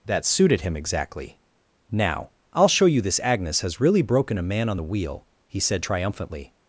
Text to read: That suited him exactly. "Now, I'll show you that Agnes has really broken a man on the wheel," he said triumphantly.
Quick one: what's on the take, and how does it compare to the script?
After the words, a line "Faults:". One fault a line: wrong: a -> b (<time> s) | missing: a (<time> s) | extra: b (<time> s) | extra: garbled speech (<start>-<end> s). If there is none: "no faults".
That suited him exactly. "Now, I'll show you this Agnes has really broken a man on the wheel," he said triumphantly.
Faults:
wrong: that -> this (3.0 s)